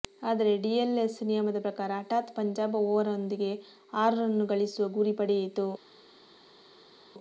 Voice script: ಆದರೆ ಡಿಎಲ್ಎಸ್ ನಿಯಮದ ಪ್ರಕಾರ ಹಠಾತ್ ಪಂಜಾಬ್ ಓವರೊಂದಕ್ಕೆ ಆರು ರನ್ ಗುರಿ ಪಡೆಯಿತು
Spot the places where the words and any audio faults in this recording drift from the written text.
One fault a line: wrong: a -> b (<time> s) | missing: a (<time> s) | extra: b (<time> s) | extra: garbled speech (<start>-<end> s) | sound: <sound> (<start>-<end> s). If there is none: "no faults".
extra: ಗಳಿಸುವ (4.5 s)